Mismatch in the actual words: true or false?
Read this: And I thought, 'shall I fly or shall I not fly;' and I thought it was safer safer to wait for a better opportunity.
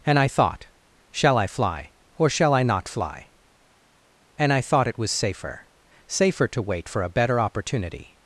false